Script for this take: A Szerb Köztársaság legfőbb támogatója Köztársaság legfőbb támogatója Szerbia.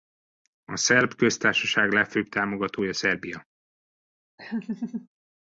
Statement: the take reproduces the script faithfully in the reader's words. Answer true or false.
false